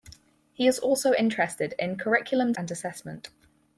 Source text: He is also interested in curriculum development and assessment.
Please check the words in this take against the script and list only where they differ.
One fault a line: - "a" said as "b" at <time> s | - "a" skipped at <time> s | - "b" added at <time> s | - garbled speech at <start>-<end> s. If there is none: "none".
- "development" skipped at 2.5 s